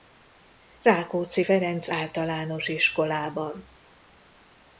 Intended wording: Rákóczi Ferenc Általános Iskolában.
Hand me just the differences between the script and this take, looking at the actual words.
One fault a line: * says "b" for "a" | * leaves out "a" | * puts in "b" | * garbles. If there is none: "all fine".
all fine